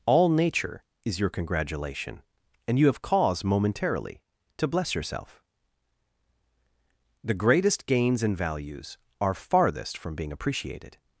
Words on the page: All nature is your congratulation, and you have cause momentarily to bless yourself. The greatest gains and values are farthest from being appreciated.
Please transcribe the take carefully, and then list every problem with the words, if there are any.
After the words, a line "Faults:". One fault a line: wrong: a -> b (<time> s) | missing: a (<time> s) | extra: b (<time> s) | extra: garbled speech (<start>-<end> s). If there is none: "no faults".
All nature is your congratulation, and you have cause momentarily to bless yourself. The greatest gains and values are farthest from being appreciated.
Faults:
no faults